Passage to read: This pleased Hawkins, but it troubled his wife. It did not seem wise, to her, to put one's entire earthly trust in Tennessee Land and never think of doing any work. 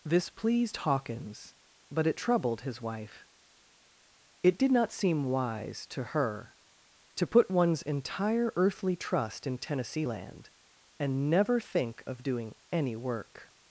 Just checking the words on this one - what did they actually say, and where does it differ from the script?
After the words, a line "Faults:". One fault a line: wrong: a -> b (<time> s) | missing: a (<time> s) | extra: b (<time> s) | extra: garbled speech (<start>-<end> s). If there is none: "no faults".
This pleased Hawkins, but it troubled his wife. It did not seem wise, to her, to put one's entire earthly trust in Tennessee Land and never think of doing any work.
Faults:
no faults